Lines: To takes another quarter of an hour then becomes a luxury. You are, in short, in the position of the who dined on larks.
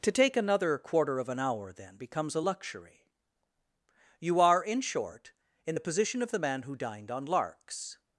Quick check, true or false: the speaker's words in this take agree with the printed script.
false